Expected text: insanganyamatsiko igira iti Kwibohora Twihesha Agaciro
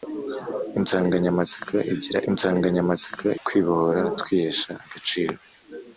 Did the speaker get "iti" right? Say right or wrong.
wrong